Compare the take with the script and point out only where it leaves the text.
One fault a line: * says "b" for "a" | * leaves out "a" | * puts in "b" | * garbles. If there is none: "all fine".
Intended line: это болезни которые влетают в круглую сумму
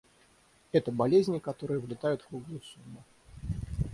all fine